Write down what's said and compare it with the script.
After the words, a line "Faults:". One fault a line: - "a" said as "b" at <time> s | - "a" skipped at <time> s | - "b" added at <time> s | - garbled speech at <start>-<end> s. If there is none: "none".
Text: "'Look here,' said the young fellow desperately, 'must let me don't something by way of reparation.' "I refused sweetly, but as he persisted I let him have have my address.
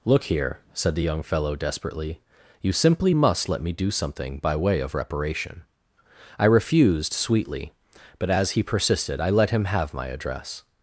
"'Look here,' said the young fellow desperately, 'you simply must let me do something by way of reparation.' "I refused sweetly, but as he persisted I let him have my address.
Faults:
- "you simply" added at 2.6 s
- "don't" said as "do" at 3.7 s
- "have" skipped at 9.9 s